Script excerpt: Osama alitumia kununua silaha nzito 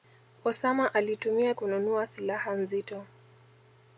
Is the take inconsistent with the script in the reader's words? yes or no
no